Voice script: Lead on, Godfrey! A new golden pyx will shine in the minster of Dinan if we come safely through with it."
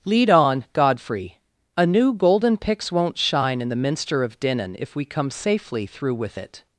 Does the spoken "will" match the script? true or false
false